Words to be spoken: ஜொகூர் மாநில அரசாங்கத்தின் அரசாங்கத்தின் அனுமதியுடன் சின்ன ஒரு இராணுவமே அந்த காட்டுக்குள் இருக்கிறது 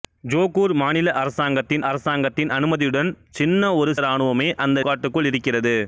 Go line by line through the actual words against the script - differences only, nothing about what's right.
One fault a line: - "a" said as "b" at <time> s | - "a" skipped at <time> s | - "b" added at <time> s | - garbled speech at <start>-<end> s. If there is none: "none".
none